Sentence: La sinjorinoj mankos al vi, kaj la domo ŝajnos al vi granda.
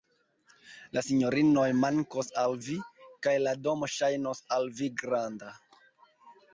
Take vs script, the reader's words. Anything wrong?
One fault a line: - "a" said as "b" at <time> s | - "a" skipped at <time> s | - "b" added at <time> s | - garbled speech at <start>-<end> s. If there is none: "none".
none